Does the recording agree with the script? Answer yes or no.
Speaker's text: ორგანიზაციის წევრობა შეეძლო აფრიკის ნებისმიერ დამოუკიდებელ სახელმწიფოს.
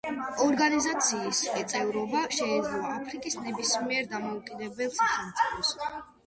yes